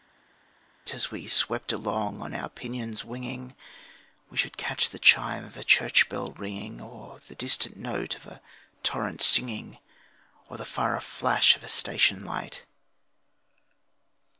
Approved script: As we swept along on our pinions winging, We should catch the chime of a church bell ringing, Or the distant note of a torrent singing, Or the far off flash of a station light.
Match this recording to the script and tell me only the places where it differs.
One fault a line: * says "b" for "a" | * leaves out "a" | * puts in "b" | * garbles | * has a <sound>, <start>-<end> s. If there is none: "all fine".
all fine